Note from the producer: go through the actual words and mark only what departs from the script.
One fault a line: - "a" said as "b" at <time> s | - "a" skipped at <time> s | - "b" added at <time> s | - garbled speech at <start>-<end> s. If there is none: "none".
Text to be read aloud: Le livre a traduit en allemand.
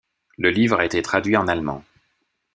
- "été" added at 0.8 s